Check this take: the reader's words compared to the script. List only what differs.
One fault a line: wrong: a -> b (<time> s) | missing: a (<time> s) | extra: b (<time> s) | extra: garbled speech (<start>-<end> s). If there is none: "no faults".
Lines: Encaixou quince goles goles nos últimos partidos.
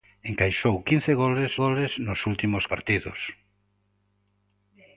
no faults